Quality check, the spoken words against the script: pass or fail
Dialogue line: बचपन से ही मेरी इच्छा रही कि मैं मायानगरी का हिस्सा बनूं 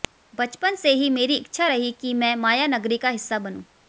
pass